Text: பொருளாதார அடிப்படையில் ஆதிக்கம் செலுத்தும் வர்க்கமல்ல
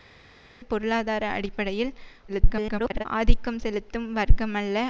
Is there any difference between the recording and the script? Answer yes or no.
yes